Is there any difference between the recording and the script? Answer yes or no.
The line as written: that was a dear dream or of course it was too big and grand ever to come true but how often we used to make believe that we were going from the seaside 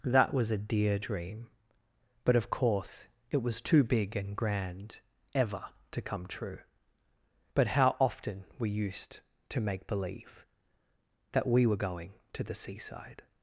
yes